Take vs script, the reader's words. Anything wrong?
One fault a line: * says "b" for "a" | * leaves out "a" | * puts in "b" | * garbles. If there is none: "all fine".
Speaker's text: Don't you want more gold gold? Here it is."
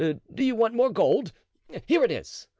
* says "Do" for "Don't"
* leaves out "gold"